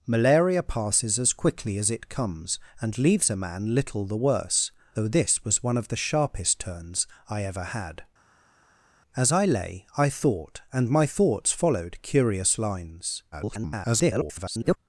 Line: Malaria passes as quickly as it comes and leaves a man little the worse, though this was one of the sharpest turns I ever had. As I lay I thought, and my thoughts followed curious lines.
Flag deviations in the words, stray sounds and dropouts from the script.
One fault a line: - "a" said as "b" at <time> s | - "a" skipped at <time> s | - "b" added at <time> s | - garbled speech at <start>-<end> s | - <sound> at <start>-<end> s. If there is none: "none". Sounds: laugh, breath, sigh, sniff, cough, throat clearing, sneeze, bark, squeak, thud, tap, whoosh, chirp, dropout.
- garbled speech at 13.3-14.8 s